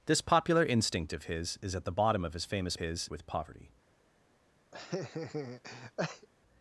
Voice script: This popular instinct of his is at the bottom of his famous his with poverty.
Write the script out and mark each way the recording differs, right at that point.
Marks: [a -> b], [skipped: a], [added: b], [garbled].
This popular instinct of his is at the bottom of his famous his with poverty.